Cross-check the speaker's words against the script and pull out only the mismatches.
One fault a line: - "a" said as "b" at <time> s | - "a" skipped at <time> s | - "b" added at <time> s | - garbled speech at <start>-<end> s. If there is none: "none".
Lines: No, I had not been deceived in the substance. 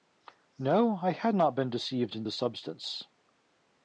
none